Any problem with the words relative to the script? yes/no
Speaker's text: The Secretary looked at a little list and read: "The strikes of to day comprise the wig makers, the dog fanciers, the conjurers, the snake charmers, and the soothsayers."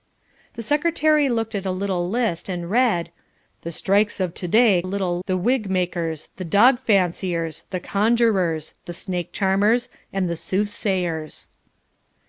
yes